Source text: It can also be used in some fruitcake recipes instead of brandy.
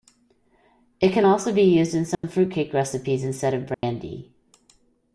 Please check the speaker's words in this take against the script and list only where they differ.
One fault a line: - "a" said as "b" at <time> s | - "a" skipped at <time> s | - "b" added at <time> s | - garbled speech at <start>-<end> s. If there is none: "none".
none